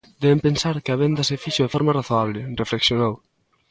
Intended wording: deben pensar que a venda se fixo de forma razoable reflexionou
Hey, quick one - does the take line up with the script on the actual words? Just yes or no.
yes